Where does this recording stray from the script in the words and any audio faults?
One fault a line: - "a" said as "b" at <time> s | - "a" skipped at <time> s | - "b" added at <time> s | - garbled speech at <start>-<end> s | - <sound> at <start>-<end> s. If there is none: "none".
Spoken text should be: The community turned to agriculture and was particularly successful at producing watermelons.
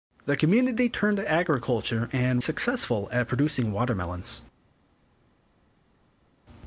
- "was particularly" skipped at 2.4 s